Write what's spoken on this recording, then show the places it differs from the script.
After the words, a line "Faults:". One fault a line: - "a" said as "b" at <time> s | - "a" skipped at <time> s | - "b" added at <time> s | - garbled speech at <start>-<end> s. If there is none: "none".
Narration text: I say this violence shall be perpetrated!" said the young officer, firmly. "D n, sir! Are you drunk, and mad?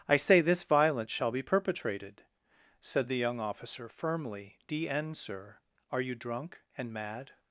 I say this violence shall be perpetrated!" said the young officer, firmly. "D n, sir! Are you drunk, and mad?
Faults:
none